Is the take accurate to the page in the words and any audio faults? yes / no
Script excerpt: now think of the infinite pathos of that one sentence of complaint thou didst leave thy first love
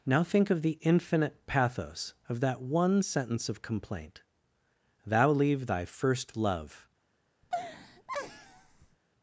no